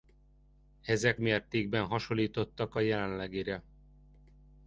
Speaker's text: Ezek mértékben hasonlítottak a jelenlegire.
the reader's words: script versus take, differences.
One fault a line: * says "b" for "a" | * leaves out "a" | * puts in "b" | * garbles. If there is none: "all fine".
all fine